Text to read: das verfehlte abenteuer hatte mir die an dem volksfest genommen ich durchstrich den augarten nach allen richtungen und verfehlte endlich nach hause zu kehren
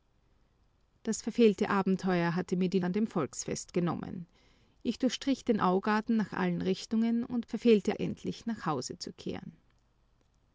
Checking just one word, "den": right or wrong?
right